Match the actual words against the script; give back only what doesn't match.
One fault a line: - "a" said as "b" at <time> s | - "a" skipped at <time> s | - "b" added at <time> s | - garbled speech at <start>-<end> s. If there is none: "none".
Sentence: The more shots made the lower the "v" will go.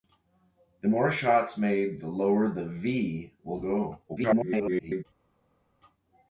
- garbled speech at 4.1-5.0 s